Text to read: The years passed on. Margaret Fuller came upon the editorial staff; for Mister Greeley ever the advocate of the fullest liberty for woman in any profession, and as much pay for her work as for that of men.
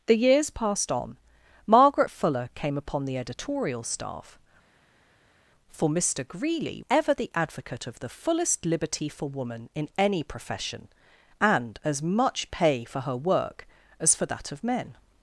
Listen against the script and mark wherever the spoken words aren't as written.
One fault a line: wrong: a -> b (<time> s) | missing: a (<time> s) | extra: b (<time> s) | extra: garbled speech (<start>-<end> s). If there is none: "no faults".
no faults